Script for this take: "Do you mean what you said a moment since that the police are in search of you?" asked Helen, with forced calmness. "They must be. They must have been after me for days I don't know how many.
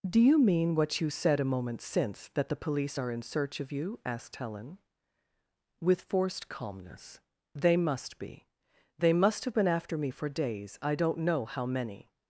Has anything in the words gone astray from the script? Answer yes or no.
no